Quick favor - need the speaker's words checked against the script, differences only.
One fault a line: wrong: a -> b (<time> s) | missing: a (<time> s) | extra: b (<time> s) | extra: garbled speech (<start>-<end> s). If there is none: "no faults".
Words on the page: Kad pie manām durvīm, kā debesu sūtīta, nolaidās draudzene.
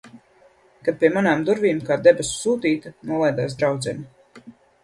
no faults